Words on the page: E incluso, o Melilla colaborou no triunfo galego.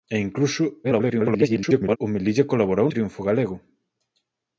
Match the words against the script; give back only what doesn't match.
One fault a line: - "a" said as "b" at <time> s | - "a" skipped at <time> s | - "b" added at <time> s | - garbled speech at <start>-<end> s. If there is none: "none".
- garbled speech at 0.8-2.0 s
- "no" skipped at 2.9 s